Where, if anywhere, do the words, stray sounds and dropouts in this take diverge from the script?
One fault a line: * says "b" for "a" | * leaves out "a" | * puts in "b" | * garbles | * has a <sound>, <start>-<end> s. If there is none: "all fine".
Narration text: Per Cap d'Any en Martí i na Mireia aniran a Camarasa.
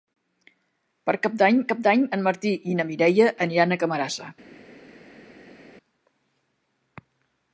* puts in "Cap d'Any"